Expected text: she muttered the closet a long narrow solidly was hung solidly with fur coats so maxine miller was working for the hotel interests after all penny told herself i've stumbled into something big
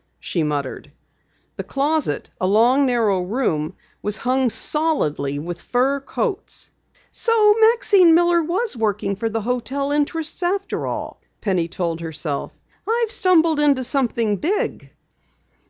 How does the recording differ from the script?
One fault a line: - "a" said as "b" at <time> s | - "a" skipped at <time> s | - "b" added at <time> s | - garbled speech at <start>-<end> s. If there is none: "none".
- "solidly" said as "room" at 3.2 s